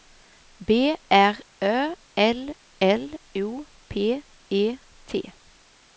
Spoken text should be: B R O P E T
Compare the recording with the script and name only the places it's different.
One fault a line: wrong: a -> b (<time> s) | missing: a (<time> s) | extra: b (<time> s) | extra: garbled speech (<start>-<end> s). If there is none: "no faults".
extra: Ö L L (1.6 s)